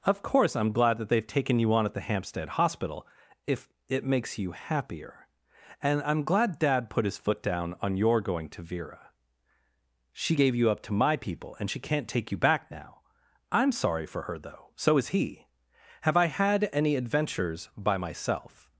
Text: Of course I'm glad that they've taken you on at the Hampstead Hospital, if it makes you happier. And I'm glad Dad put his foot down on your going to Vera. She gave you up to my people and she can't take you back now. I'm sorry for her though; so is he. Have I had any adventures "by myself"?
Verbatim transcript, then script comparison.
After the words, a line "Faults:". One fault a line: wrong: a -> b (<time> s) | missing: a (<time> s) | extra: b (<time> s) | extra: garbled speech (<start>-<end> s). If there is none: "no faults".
Of course I'm glad that they've taken you on at the Hampstead Hospital, if it makes you happier. And I'm glad Dad put his foot down on your going to Vera. She gave you up to my people and she can't take you back now. I'm sorry for her though; so is he. Have I had any adventures "by myself"?
Faults:
no faults